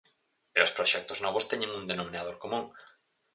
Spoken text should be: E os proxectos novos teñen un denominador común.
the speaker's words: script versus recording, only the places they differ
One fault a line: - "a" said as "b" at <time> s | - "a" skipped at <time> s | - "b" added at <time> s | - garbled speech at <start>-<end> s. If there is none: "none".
none